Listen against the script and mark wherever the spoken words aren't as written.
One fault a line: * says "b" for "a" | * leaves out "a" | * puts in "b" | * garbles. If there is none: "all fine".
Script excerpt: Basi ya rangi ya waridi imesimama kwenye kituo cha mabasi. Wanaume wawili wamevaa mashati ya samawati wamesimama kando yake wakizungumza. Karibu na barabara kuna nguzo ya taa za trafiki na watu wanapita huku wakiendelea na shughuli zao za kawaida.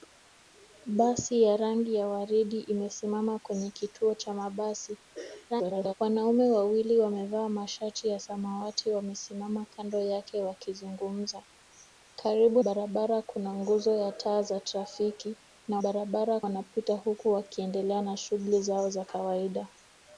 * garbles
* leaves out "na"
* says "barabara" for "watu"